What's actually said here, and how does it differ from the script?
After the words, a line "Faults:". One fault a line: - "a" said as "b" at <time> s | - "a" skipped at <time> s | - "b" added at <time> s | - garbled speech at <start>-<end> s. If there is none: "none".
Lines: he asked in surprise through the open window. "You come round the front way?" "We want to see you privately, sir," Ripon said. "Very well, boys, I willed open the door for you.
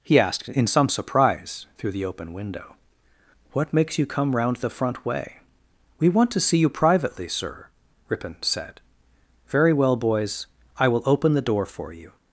he asked in some surprise through the open window. "What makes you come round the front way?" "We want to see you privately, sir," Ripon said. "Very well, boys, I will open the door for you.
Faults:
- "some" added at 0.7 s
- "What makes" added at 3.5 s
- "willed" said as "will" at 10.9 s